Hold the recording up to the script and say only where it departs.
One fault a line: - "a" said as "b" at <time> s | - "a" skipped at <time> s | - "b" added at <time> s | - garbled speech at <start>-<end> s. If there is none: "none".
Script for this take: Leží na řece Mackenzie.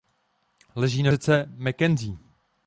none